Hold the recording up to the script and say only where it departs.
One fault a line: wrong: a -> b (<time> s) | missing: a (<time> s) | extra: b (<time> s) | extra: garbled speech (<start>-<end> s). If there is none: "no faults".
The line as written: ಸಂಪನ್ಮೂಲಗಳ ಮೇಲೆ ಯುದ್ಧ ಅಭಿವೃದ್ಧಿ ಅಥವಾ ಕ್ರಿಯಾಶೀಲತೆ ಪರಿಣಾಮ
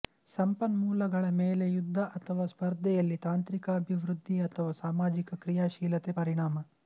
extra: ಅಥವಾ ಸ್ಪರ್ಧೆಯಲ್ಲಿ ತಾಂತ್ರಿಕ (2.2 s)
extra: ಸಾಮಾಜಿಕ (4.8 s)